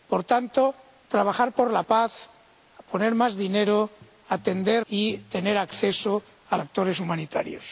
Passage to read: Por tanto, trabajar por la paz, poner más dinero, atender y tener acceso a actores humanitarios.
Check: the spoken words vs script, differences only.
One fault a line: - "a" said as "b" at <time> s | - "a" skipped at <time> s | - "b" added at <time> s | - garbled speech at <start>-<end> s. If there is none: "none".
none